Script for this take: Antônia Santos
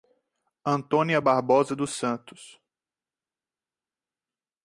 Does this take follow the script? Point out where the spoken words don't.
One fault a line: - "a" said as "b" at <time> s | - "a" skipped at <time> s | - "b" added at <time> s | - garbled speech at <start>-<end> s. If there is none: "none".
- "Barbosa dos" added at 1.2 s